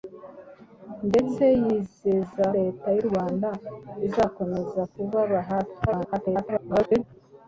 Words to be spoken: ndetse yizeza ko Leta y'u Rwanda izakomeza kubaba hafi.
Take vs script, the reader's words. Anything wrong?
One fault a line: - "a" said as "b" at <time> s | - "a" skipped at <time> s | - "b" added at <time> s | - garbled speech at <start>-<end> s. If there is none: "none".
- "ko" skipped at 2.5 s
- garbled speech at 5.9-7.0 s